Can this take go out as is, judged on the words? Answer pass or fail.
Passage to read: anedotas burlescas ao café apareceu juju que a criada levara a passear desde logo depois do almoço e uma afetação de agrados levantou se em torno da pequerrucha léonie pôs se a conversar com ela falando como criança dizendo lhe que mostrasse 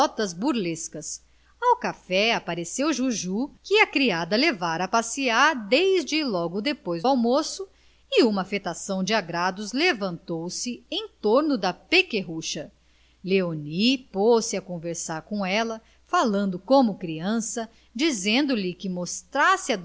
fail